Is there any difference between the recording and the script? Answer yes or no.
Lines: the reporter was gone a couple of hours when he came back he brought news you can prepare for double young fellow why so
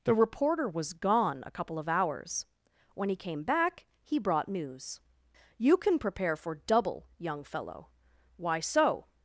no